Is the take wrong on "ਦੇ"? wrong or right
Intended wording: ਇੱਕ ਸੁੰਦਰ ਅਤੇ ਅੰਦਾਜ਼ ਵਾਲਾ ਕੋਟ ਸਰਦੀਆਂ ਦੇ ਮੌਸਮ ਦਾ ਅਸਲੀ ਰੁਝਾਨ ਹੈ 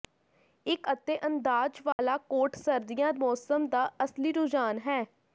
wrong